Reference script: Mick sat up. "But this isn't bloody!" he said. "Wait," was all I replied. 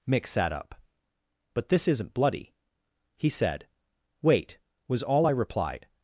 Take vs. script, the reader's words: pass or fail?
pass